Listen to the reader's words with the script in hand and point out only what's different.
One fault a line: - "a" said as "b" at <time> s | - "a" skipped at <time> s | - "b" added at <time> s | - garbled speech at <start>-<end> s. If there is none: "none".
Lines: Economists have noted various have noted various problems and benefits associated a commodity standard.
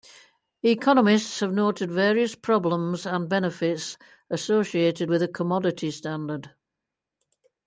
- "have noted various" skipped at 2.3 s
- "with" added at 5.1 s